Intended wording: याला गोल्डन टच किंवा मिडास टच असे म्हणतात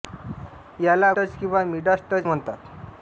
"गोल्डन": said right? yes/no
no